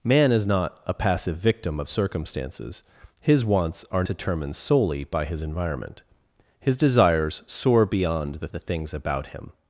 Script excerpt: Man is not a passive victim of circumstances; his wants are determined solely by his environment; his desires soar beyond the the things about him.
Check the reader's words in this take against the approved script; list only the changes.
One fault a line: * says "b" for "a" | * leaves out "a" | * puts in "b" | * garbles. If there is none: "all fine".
all fine